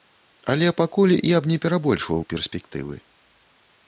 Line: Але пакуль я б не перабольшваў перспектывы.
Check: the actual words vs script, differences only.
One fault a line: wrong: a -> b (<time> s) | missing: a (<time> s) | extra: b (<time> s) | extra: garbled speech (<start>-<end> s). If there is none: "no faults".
no faults